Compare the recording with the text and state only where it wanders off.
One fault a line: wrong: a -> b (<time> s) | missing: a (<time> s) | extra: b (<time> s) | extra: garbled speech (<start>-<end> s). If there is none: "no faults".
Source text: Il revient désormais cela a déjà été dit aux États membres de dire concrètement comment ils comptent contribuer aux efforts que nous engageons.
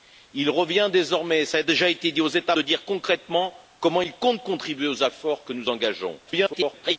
missing: membres (2.5 s)
extra: garbled speech (6.3-7.0 s)